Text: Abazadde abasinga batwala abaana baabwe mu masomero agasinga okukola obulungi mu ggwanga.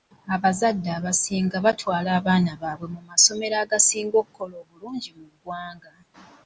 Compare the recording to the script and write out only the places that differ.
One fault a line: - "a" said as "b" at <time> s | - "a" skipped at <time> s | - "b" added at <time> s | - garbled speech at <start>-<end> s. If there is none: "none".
none